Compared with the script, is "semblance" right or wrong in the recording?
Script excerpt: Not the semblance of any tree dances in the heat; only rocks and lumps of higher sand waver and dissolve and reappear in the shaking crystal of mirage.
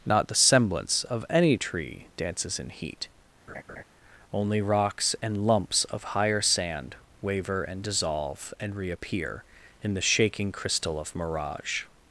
right